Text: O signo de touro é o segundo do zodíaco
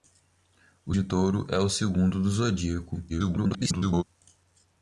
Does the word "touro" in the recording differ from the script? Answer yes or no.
no